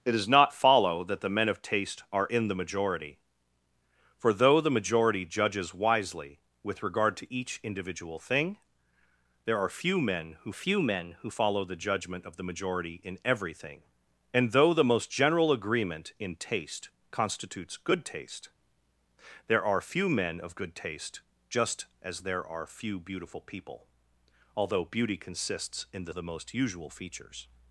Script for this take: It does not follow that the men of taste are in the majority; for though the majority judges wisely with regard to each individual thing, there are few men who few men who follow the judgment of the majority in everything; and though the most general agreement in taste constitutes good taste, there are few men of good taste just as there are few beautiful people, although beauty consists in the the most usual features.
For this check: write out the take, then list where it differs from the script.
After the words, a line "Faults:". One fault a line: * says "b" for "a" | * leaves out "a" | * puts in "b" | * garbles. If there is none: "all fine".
It does not follow that the men of taste are in the majority; for though the majority judges wisely with regard to each individual thing, there are few men who few men who follow the judgment of the majority in everything; and though the most general agreement in taste constitutes good taste, there are few men of good taste just as there are few beautiful people, although beauty consists in the the most usual features.
Faults:
all fine